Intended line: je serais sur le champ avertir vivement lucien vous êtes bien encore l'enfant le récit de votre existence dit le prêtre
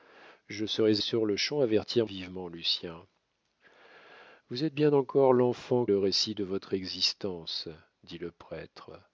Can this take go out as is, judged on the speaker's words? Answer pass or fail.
pass